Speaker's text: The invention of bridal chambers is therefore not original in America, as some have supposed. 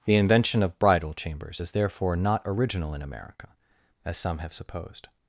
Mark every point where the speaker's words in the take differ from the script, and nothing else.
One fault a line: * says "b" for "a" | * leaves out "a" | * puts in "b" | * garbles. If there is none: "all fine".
all fine